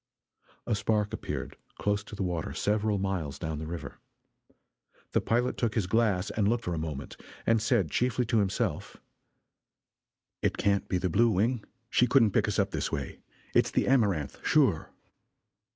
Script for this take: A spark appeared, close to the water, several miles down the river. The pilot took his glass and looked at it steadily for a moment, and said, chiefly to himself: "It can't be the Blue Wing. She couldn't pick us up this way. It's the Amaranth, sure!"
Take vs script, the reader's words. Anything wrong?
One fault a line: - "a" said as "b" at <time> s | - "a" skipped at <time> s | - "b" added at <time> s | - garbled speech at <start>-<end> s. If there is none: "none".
- "at it steadily" skipped at 6.7 s